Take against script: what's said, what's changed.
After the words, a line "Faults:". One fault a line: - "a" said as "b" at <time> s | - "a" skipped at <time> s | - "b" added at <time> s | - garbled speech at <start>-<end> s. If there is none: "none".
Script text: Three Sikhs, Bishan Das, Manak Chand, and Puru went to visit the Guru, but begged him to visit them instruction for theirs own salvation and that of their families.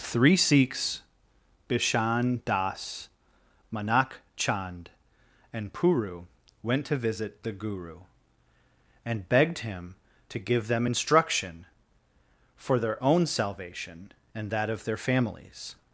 Three Sikhs, Bishan Das, Manak Chand, and Puru went to visit the Guru, and begged him to give them instruction for their own salvation and that of their families.
Faults:
- "but" said as "and" at 9.1 s
- "visit" said as "give" at 10.4 s
- "theirs" said as "their" at 12.8 s